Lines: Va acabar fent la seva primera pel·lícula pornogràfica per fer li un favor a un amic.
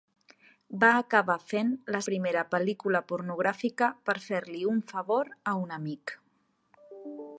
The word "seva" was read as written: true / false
false